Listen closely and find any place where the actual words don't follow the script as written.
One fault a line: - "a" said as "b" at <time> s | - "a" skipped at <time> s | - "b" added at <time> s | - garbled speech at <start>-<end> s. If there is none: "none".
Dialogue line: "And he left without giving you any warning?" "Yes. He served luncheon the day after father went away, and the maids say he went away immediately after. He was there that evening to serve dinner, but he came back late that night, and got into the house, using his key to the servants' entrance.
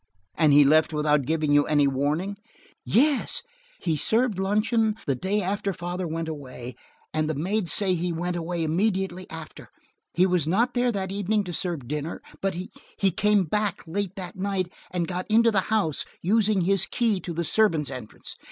- "not" added at 10.5 s